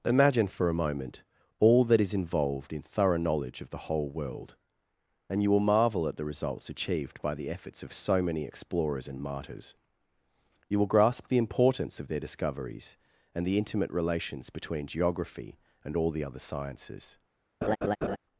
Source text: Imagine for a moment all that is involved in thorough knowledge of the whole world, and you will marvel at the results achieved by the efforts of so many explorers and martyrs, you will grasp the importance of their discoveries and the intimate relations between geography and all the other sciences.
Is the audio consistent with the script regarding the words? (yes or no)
yes